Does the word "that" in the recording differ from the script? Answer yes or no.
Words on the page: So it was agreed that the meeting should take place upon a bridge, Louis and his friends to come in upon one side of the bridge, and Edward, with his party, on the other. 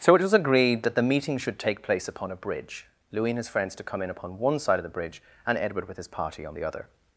no